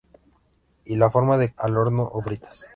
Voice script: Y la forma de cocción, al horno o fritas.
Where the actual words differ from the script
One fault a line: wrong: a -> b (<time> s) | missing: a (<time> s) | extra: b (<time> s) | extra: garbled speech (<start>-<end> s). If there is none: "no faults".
missing: cocción (1.5 s)